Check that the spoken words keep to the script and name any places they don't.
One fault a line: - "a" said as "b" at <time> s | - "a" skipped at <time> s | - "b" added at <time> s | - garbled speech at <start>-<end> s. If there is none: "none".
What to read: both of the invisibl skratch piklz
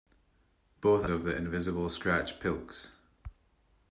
none